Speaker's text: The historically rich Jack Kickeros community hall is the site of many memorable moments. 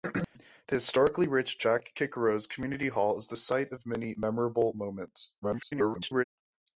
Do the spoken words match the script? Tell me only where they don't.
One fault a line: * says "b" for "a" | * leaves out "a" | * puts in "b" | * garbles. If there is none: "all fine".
* garbles